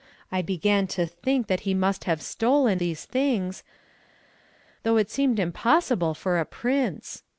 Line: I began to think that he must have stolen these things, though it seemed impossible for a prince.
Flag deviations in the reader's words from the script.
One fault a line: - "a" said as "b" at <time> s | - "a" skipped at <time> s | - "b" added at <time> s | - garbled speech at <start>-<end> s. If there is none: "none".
none